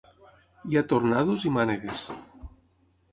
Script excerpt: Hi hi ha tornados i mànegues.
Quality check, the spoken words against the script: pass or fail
fail